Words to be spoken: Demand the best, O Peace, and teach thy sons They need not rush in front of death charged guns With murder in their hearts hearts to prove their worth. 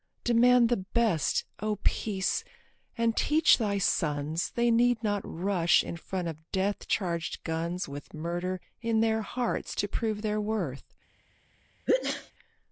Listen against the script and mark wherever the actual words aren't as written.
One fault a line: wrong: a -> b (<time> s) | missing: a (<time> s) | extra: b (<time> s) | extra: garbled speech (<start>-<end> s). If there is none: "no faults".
missing: hearts (9.8 s)